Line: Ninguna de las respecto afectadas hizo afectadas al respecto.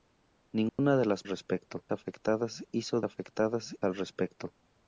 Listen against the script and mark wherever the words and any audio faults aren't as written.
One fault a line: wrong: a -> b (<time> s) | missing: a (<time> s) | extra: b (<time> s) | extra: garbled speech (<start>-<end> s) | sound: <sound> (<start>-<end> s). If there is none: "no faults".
sound: dropout (0.7-0.8 s)